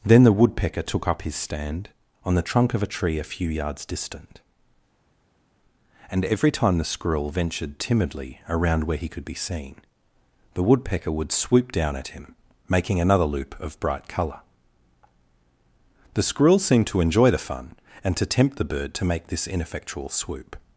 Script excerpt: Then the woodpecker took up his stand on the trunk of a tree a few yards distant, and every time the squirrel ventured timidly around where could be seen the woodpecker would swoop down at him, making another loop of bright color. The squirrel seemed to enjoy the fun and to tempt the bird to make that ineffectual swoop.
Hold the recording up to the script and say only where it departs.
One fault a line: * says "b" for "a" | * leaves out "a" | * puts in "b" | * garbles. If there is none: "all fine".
* puts in "he"
* says "this" for "that"